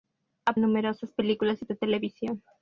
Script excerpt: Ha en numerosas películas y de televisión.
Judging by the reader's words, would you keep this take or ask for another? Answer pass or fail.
pass